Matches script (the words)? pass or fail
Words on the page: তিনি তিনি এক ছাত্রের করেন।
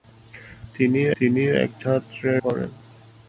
pass